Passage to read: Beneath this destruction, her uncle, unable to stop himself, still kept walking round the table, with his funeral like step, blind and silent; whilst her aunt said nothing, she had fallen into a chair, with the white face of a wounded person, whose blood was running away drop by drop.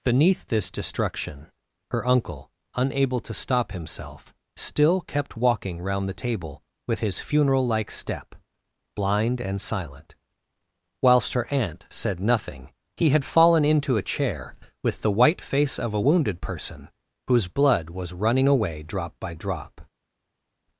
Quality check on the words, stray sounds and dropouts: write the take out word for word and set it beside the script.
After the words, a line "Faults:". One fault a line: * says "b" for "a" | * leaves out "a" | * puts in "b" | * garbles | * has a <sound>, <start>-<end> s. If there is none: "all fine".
Beneath this destruction, her uncle, unable to stop himself, still kept walking round the table, with his funeral like step, blind and silent; whilst her aunt said nothing, he had fallen into a chair, with the white face of a wounded person, whose blood was running away drop by drop.
Faults:
* says "he" for "she"